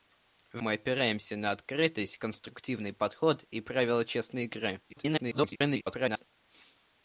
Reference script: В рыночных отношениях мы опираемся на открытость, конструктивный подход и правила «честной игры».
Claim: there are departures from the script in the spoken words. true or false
true